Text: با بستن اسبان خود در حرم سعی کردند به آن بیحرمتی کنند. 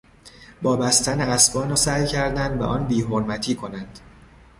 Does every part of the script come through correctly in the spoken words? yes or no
no